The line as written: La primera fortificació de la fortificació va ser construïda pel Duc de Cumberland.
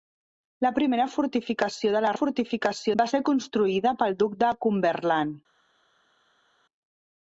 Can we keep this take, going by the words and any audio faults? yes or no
yes